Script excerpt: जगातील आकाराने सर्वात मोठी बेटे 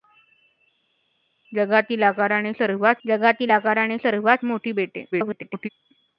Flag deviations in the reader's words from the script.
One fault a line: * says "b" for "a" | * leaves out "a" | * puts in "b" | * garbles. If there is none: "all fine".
* puts in "जगातील आकाराने सर्वात"
* garbles